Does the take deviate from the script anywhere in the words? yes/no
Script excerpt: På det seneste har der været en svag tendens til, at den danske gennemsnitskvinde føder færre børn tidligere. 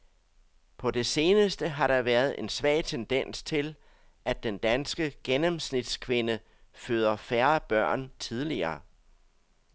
no